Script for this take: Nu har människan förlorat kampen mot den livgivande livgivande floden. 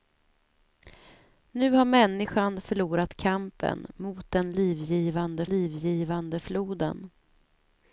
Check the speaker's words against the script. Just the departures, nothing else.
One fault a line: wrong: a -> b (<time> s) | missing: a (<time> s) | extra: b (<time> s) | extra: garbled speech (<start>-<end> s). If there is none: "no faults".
no faults